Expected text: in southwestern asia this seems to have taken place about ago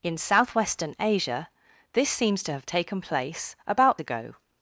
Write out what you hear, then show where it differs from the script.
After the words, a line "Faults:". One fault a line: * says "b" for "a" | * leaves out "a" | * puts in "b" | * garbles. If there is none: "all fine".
in southwestern asia this seems to have taken place about ago
Faults:
all fine